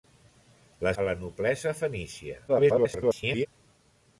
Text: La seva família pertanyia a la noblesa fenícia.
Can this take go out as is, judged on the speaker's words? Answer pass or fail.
fail